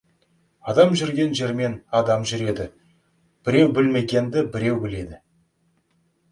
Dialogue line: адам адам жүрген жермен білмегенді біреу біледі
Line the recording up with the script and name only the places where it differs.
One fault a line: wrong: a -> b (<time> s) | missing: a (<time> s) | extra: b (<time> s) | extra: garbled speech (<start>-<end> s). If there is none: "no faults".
extra: жүрген жермен (1.0 s)
wrong: жүрген жермен -> жүреді біреу (2.3 s)